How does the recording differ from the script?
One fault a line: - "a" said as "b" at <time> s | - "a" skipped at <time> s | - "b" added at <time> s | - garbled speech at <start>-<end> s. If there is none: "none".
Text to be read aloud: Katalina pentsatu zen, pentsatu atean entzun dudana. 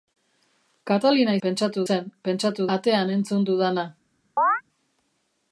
none